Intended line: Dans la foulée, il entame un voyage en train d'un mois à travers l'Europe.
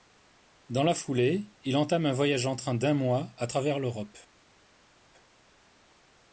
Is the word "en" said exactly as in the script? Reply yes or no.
yes